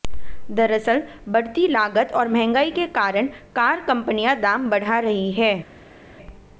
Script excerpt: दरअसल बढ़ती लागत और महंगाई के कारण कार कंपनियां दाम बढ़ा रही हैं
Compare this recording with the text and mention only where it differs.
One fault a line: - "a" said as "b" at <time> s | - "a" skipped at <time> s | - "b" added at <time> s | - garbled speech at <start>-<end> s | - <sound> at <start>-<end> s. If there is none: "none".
none